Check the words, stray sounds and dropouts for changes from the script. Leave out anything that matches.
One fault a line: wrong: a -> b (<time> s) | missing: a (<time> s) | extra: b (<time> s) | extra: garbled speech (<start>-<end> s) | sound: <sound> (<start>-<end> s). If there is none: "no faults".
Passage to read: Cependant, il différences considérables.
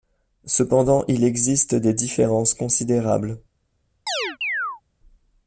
extra: existe des (1.2 s)
sound: chirp (4.1-4.8 s)